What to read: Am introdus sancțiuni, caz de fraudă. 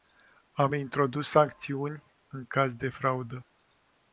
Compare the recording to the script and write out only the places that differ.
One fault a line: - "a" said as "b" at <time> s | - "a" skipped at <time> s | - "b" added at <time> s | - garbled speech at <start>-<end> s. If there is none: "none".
- "în" added at 2.3 s